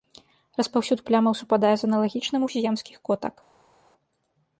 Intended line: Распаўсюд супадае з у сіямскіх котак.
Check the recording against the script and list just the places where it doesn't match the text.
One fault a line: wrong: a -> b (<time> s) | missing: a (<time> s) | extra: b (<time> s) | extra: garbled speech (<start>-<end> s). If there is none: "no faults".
extra: плямаў (1.1 s)
extra: аналагічным (1.9 s)